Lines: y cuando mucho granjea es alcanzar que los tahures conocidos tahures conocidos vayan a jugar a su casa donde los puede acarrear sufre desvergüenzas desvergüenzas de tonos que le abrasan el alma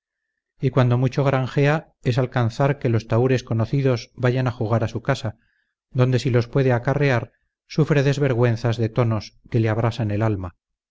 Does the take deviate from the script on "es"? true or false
false